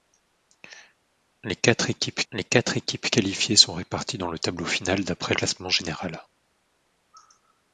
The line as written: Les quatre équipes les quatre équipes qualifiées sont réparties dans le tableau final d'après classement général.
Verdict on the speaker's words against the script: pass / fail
pass